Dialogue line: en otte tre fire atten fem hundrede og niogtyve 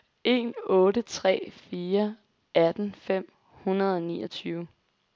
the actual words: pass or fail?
pass